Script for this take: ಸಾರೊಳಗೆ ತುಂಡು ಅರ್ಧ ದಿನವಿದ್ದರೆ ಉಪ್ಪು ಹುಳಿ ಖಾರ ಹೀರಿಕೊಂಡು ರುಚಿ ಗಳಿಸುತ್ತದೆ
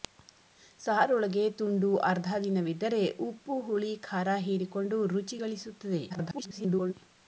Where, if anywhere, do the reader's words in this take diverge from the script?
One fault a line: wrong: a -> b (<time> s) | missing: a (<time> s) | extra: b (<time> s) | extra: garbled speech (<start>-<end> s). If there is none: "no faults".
extra: garbled speech (6.1-6.9 s)